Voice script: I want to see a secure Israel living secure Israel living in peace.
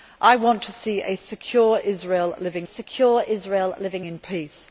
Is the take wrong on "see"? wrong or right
right